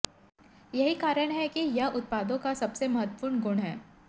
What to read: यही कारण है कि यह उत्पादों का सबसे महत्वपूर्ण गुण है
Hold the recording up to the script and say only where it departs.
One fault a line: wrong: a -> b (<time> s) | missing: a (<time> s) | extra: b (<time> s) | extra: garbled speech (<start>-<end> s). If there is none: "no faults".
no faults